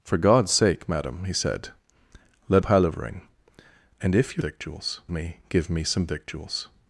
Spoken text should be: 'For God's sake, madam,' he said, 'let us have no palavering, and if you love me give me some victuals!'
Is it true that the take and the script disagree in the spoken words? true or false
true